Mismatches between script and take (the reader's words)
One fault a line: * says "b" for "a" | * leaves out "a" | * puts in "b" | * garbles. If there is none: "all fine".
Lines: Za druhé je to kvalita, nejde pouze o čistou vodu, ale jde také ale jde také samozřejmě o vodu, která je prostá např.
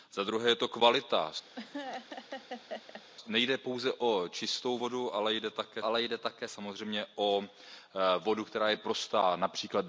all fine